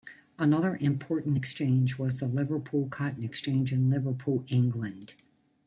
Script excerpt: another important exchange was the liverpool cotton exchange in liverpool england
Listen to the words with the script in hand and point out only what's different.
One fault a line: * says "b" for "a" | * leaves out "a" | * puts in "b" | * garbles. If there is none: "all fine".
all fine